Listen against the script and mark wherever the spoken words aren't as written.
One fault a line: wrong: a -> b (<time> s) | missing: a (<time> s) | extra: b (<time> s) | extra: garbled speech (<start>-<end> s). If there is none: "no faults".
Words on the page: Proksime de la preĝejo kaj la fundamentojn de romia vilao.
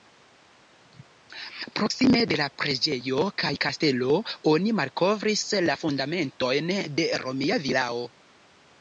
extra: kastelo oni malkovris (3.7 s)